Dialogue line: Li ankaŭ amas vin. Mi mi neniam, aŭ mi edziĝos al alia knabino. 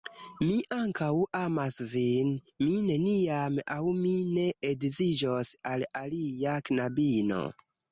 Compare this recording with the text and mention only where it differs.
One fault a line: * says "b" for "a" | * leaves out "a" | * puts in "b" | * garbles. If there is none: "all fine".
* says "Mi" for "Li"
* leaves out "mi"
* puts in "ne"